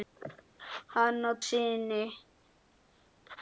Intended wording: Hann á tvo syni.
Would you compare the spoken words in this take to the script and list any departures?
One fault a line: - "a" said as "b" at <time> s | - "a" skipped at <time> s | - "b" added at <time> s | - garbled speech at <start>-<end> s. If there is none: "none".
- "tvo" skipped at 1.3 s